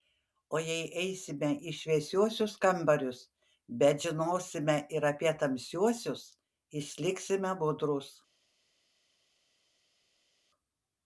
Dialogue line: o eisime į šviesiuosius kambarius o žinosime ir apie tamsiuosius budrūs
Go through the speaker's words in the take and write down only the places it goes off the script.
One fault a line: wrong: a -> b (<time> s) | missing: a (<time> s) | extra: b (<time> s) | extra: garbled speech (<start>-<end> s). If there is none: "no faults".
extra: jei (0.7 s)
wrong: o -> bet (3.8 s)
extra: išliksime (6.8 s)